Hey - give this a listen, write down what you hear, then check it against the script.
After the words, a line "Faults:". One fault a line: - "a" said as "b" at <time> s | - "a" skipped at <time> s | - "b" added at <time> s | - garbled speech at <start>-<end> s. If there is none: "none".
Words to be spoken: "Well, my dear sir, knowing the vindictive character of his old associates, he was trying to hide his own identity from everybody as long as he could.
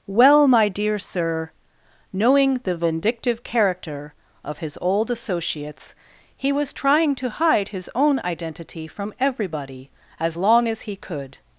"Well, my dear sir, knowing the vindictive character of his old associates, he was trying to hide his own identity from everybody as long as he could.
Faults:
none